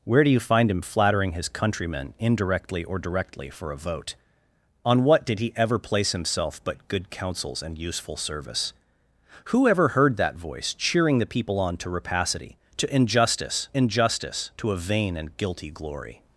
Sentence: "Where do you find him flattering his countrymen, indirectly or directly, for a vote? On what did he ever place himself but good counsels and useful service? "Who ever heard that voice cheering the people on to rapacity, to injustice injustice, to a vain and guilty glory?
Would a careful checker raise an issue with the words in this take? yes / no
no